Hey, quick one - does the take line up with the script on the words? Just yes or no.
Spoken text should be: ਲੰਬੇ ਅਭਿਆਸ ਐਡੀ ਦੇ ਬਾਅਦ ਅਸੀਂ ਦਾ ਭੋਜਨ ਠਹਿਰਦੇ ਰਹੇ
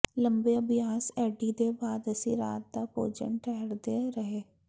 no